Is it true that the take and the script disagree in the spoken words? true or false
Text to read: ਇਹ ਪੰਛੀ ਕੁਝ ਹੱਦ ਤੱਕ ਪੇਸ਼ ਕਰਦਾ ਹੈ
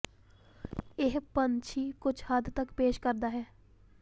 false